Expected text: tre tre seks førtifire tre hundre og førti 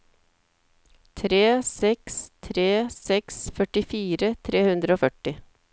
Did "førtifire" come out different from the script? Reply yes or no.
no